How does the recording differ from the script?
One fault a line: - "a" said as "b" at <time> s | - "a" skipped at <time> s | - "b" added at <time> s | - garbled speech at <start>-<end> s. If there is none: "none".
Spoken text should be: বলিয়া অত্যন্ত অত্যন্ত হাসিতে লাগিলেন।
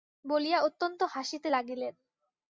- "অত্যন্ত" skipped at 1.0 s